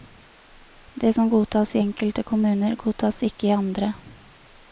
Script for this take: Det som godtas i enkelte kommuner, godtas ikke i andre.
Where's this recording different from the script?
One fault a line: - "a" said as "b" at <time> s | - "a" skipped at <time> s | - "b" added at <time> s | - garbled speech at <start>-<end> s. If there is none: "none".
none